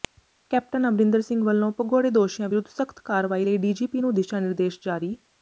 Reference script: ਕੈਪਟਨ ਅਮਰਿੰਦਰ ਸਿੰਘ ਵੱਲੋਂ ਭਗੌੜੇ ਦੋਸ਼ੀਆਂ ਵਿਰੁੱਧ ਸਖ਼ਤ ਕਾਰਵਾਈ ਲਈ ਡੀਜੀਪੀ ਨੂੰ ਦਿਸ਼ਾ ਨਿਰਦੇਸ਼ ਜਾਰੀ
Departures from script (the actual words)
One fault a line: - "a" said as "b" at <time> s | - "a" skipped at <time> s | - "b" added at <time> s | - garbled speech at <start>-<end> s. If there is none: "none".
none